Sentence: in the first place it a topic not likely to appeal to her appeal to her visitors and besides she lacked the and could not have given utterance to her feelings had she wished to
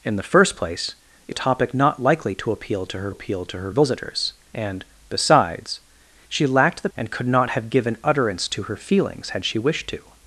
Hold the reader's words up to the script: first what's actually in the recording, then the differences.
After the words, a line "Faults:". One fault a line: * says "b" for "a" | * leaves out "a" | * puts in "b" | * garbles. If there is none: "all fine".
in the first place it a topic not likely to appeal to her appeal to her visitors and besides she lacked the and could not have given utterance to her feelings had she wished to
Faults:
all fine